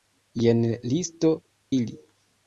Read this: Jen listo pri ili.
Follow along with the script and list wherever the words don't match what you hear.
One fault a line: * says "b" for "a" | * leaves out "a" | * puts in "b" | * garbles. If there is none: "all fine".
* leaves out "pri"